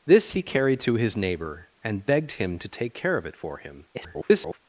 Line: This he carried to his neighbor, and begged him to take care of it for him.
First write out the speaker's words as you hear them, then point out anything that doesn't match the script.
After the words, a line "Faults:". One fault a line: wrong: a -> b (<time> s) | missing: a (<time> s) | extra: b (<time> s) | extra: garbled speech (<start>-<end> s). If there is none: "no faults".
This he carried to his neighbor, and begged him to take care of it for him. [garbled]
Faults:
extra: garbled speech (3.9-4.6 s)